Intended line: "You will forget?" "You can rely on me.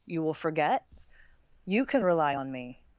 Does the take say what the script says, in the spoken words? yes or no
yes